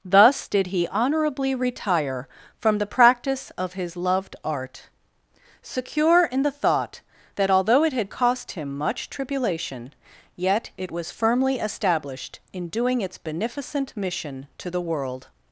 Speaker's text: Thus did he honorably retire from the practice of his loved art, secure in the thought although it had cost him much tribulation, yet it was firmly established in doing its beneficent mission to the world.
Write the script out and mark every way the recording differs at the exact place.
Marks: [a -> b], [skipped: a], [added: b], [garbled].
Thus did he honorably retire from the practice of his loved art, secure in the thought [added: that] although it had cost him much tribulation, yet it was firmly established in doing its beneficent mission to the world.